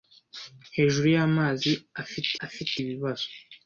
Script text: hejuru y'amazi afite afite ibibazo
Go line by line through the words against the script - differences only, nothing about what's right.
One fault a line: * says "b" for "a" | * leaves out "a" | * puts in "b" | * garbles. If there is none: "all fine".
all fine